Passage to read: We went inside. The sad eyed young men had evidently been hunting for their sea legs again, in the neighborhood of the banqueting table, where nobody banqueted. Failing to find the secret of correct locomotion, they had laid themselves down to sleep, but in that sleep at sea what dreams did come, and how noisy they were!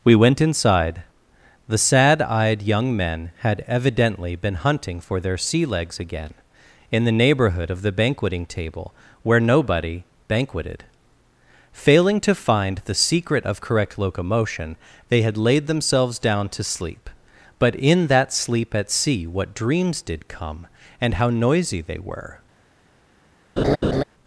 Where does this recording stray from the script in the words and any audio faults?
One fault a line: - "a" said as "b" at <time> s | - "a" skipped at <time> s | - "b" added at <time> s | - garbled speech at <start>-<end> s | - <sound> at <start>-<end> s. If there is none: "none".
- laugh at 23.6-24.0 s